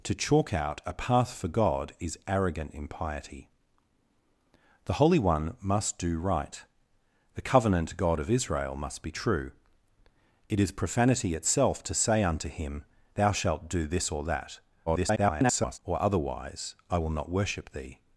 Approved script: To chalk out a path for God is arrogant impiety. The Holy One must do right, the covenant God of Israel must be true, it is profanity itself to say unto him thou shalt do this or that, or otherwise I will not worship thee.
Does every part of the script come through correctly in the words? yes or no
no